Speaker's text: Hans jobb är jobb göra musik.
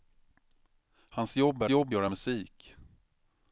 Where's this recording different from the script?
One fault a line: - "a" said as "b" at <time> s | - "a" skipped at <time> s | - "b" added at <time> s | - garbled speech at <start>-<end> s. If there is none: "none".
none